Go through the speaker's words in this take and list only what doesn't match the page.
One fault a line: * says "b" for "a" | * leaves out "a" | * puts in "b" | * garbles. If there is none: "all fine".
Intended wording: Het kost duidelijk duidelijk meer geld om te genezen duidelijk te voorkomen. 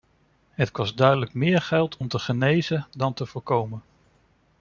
* leaves out "duidelijk"
* says "dan" for "duidelijk"